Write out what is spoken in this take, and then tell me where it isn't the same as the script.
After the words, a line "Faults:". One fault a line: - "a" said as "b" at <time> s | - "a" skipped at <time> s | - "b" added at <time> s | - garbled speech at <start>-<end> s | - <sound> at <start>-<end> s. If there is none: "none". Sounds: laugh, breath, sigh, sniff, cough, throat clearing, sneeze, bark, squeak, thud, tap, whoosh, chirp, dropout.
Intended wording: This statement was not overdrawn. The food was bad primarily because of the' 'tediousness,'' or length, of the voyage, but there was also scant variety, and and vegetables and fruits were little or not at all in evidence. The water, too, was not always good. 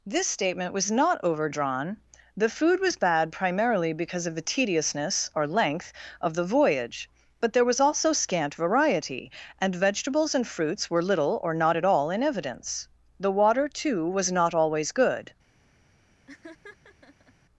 This statement was not overdrawn. The food was bad primarily because of the' 'tediousness,'' or length, of the voyage, but there was also scant variety, and vegetables and fruits were little or not at all in evidence. The water, too, was not always good.
Faults:
- "and" skipped at 9.8 s
- laugh at 16.3-17.3 s